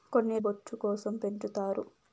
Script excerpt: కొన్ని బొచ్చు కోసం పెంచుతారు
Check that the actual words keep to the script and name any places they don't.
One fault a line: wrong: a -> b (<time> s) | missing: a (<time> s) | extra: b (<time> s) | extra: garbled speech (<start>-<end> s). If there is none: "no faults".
no faults